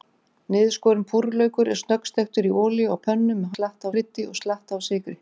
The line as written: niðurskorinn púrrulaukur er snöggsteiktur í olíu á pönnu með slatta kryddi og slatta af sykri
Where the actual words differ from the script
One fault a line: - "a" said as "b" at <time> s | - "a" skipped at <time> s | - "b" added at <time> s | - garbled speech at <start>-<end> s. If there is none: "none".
none